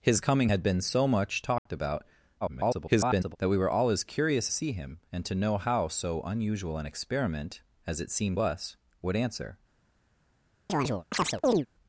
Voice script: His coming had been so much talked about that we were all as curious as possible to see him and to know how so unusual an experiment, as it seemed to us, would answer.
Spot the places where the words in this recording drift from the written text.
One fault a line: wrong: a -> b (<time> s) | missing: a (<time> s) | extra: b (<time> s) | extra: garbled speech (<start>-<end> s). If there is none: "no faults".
extra: garbled speech (2.4-3.4 s)
missing: as possible to (4.5 s)
missing: to (8.4 s)